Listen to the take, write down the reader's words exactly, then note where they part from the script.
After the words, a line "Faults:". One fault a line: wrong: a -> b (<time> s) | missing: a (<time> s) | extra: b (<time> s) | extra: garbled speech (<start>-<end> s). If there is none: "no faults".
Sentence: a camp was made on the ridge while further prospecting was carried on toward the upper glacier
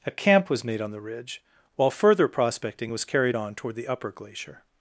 a camp was made on the ridge while further prospecting was carried on toward the upper glacier
Faults:
no faults